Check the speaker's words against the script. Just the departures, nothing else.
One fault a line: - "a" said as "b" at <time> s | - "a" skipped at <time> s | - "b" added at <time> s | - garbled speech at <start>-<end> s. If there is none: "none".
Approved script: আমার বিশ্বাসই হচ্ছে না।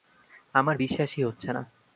none